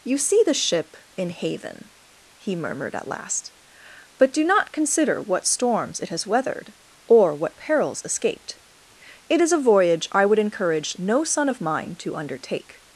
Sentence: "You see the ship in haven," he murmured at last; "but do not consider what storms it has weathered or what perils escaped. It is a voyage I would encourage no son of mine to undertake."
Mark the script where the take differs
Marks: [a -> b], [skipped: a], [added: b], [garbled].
"You see the ship in haven," he murmured at last; "but do not consider what storms it has weathered or what perils escaped. It is a voyage I would encourage no son of mine to undertake."